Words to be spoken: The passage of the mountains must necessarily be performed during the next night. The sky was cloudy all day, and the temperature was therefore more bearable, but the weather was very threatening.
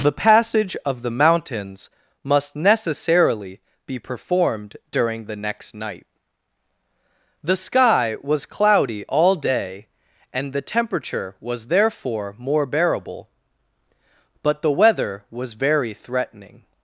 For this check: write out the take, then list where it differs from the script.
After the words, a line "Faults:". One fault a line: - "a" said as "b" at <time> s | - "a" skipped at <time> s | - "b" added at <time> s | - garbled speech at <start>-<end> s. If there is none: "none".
The passage of the mountains must necessarily be performed during the next night. The sky was cloudy all day, and the temperature was therefore more bearable, but the weather was very threatening.
Faults:
none